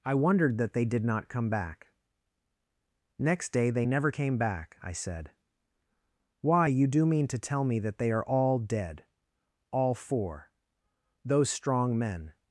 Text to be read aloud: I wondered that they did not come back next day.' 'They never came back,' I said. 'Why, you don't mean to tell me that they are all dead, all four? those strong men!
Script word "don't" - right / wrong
wrong